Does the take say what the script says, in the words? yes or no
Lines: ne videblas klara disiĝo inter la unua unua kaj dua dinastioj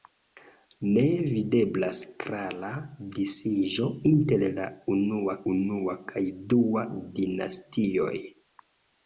yes